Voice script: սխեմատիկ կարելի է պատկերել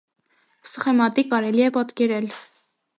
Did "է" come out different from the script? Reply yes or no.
no